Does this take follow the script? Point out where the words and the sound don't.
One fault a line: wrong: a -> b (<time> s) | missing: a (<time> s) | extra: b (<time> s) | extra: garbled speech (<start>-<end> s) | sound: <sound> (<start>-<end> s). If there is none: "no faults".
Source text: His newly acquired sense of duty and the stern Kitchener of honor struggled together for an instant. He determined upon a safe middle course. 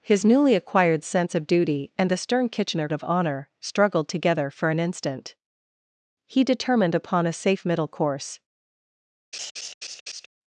sound: laugh (9.3-10.3 s)